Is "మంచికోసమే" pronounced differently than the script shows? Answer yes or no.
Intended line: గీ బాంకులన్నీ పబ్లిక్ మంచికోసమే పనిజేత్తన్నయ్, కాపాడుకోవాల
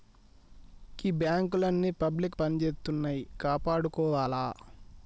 yes